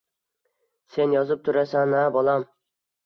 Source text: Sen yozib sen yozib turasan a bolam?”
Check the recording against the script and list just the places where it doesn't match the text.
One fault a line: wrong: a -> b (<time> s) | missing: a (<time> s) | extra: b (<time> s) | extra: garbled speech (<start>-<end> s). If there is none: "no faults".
missing: sen yozib (1.4 s)